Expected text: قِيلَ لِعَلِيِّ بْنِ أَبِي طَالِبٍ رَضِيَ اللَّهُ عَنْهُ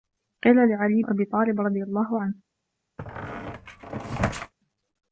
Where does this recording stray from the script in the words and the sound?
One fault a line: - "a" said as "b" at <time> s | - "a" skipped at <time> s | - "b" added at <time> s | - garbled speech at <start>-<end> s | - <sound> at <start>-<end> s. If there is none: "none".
- "بْنِ" skipped at 1.0 s
- squeak at 3.0-4.5 s